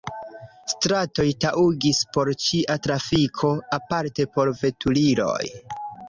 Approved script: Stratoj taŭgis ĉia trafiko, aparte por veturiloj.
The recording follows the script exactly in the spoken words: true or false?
false